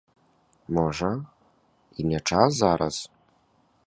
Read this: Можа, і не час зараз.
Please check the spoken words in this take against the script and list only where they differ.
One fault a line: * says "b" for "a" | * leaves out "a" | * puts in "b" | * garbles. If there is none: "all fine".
all fine